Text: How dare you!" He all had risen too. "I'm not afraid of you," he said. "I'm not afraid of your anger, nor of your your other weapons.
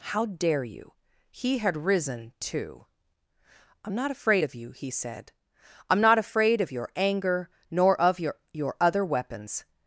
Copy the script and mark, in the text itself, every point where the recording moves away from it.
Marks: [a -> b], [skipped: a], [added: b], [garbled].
How dare you!" He [skipped: all] had risen too. "I'm not afraid of you," he said. "I'm not afraid of your anger, nor of your your other weapons.